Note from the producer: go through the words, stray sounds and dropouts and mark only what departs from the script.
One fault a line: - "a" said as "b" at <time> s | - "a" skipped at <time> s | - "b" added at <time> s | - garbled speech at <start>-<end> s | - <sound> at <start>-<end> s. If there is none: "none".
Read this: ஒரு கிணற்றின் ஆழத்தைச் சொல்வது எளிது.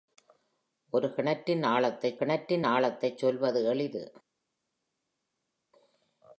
- "கிணற்றின் ஆழத்தைச்" added at 2.2 s